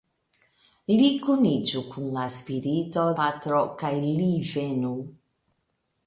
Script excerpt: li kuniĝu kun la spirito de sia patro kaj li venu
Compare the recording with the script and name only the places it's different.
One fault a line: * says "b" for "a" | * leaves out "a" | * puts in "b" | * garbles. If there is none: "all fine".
* leaves out "de sia"